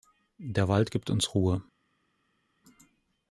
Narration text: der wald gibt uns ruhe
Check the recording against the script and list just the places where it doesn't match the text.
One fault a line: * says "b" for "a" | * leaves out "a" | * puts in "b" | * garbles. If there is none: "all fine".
all fine